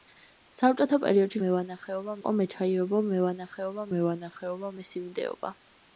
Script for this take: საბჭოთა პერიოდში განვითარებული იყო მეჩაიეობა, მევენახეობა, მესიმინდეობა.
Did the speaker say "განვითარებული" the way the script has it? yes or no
no